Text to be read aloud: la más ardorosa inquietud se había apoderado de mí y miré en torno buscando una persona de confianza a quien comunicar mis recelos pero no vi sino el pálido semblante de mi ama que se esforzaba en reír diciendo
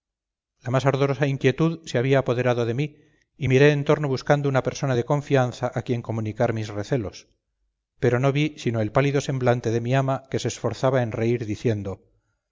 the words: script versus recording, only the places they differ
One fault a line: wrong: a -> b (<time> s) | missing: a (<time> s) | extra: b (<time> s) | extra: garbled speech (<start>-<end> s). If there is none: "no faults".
no faults